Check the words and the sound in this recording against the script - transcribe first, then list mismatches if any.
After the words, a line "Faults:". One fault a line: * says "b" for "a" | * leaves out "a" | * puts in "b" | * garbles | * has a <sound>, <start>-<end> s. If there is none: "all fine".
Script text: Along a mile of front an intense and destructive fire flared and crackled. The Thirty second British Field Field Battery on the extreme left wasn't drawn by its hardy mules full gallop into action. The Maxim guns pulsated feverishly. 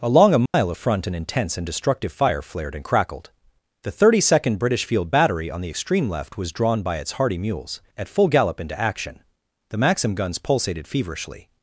Along a mile of front an intense and destructive fire flared and crackled. The Thirty second British Field Battery on the extreme left was drawn by its hardy mules at full gallop into action. The Maxim guns pulsated feverishly.
Faults:
* has a dropout, 0.5-0.5 s
* leaves out "Field"
* says "was" for "wasn't"
* puts in "at"